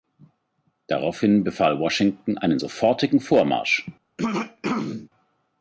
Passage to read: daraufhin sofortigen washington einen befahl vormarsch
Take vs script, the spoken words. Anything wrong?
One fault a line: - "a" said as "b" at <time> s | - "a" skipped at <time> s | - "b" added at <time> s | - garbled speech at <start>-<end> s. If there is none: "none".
- "sofortigen" said as "befahl" at 1.4 s
- "befahl" said as "sofortigen" at 2.5 s